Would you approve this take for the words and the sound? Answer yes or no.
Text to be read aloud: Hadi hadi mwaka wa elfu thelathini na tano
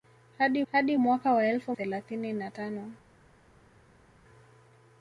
yes